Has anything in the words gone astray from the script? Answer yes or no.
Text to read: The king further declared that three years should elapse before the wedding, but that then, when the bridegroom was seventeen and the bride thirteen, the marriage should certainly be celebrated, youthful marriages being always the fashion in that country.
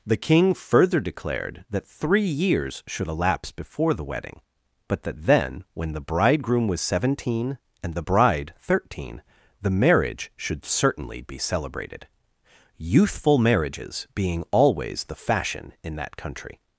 no